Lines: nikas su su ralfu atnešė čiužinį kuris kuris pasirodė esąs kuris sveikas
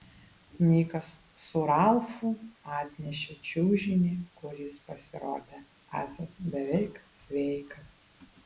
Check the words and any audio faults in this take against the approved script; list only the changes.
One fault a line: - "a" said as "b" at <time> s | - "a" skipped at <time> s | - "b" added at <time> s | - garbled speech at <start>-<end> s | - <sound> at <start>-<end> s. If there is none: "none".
- "su" skipped at 1.6 s
- "kuris" skipped at 4.8 s
- "kuris" said as "beveik" at 6.5 s